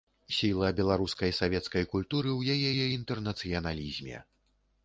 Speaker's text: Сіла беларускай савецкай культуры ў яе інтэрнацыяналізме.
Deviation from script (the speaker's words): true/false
true